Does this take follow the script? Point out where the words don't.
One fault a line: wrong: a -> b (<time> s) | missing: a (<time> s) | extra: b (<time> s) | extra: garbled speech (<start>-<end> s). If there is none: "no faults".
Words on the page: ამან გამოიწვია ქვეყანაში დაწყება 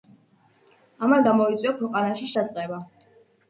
no faults